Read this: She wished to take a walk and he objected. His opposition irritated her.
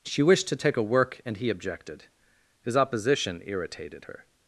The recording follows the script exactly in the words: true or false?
false